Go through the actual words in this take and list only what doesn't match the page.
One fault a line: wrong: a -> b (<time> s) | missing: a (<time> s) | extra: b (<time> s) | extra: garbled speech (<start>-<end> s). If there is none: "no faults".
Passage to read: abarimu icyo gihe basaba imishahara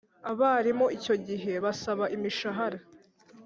no faults